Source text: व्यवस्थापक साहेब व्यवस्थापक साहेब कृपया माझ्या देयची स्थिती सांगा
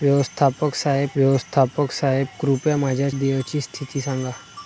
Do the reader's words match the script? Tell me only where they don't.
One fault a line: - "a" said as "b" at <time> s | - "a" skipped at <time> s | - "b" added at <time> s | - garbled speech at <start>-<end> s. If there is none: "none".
none